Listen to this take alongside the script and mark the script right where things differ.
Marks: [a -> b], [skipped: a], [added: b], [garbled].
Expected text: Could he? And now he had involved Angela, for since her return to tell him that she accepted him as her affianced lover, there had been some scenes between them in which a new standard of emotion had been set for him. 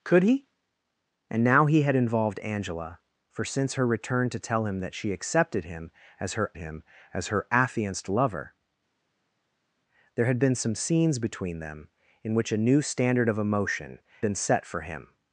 Could he? And now he had involved Angela, for since her return to tell him that she accepted him as her [added: him as her] affianced lover, there had been some scenes between them in which a new standard of emotion [skipped: had] been set for him.